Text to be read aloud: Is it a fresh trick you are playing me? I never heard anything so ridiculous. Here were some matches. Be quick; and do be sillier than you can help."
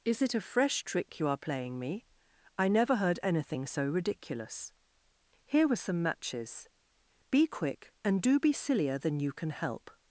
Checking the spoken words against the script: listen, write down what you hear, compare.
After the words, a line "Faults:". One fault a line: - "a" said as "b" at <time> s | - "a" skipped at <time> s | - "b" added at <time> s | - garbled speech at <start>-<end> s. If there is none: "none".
Is it a fresh trick you are playing me? I never heard anything so ridiculous. Here were some matches. Be quick; and do be sillier than you can help."
Faults:
none